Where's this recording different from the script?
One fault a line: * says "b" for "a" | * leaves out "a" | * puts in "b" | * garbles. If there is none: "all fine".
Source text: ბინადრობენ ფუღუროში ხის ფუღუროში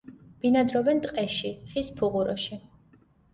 * says "ტყეში" for "ფუღუროში"